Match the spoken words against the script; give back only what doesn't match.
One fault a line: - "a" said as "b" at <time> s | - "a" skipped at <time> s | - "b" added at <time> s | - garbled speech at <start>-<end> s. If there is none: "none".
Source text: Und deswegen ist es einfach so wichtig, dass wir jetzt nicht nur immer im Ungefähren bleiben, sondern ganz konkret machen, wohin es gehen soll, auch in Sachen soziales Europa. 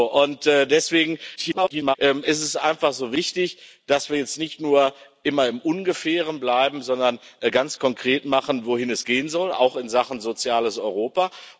- garbled speech at 1.4-2.0 s